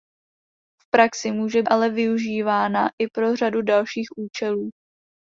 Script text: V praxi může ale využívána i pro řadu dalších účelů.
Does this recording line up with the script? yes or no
yes